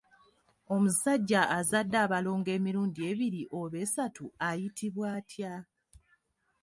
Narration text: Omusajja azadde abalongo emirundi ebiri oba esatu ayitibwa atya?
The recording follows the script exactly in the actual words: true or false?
true